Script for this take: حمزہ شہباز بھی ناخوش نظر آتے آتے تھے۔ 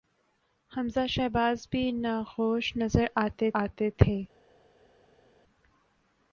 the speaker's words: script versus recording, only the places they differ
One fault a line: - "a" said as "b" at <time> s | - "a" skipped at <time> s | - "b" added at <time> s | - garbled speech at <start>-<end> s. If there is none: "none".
none